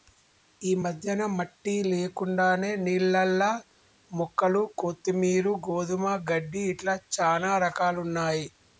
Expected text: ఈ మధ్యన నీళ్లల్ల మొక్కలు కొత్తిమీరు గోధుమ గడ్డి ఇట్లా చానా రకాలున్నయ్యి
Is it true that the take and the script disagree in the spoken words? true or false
true